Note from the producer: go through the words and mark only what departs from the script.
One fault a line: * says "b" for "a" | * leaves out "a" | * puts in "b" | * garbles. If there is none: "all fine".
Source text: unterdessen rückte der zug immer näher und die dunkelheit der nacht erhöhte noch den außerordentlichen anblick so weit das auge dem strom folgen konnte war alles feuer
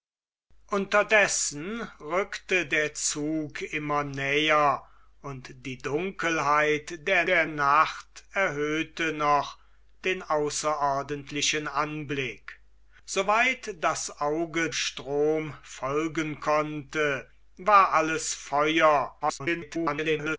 * puts in "der"
* leaves out "dem"
* garbles